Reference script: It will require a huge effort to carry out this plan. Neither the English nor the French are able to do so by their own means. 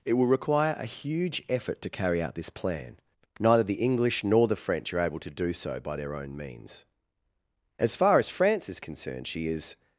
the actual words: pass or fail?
fail